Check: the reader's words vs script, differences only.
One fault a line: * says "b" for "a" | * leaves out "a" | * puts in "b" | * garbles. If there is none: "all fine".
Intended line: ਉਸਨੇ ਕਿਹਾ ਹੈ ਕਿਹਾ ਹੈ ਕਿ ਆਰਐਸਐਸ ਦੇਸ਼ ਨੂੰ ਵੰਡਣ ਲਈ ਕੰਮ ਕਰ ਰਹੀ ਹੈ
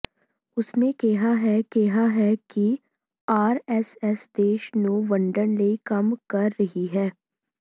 all fine